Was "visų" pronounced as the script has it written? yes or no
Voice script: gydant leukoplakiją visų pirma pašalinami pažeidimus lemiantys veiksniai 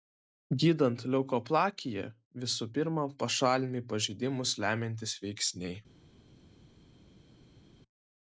yes